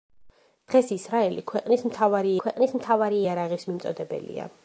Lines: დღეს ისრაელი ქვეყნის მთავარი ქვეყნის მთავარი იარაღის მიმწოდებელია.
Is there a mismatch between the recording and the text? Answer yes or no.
no